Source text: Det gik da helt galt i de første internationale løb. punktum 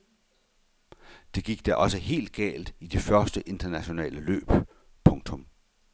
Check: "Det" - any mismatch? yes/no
no